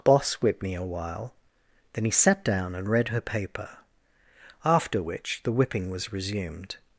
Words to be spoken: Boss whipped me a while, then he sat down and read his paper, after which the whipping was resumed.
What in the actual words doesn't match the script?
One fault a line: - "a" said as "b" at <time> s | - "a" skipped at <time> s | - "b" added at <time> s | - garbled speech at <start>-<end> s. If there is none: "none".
- "his" said as "her" at 3.1 s